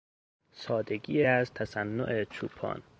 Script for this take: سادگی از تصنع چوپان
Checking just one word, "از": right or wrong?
right